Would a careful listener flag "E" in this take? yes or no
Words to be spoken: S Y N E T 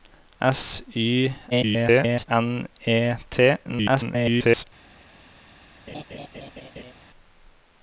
no